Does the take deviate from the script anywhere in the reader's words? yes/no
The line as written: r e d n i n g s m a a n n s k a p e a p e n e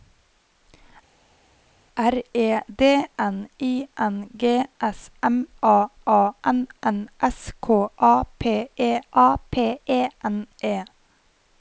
no